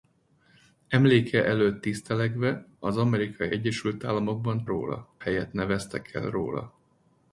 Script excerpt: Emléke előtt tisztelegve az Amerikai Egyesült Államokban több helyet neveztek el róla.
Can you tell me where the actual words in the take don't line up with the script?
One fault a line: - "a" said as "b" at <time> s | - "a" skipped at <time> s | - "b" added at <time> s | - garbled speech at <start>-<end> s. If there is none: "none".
- "több" said as "róla" at 4.7 s